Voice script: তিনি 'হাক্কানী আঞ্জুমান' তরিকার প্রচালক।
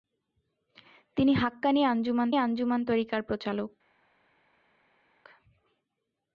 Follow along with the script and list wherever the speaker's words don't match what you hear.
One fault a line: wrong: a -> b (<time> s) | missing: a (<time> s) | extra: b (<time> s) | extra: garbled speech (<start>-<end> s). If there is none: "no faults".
extra: আঞ্জুমান (2.4 s)